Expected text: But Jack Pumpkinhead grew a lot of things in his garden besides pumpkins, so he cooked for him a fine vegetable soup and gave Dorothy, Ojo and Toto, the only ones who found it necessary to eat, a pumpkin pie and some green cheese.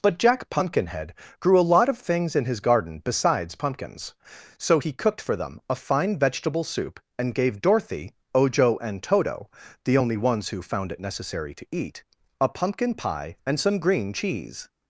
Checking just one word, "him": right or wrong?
wrong